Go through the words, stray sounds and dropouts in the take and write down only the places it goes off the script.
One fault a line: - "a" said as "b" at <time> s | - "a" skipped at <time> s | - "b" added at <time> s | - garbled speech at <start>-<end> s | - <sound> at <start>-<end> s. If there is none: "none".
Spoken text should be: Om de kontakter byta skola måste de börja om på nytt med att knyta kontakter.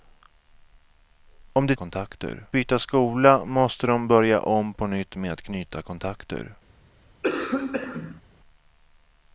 - cough at 7.2-8.2 s